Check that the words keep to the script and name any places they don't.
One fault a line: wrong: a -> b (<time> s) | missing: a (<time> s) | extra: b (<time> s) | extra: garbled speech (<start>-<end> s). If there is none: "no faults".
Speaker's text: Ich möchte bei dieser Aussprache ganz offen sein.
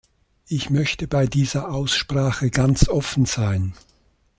no faults